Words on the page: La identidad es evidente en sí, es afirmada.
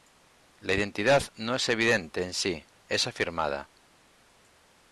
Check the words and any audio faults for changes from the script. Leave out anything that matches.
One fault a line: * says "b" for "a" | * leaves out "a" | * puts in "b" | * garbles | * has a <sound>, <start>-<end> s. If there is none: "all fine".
* puts in "no"